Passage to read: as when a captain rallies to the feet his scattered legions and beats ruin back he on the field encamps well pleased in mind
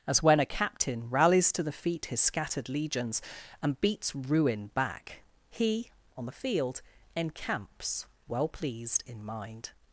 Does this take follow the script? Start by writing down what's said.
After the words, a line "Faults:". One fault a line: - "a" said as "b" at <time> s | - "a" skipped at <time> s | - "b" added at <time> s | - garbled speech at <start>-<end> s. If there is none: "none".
as when a captain rallies to the feet his scattered legions and beats ruin back he on the field encamps well pleased in mind
Faults:
none